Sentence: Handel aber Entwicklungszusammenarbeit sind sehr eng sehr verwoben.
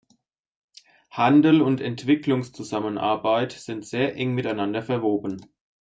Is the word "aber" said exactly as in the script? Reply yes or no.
no